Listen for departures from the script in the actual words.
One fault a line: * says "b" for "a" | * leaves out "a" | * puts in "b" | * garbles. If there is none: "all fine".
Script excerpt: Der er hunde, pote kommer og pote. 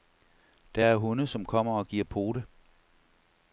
* says "som" for "pote"
* puts in "giver"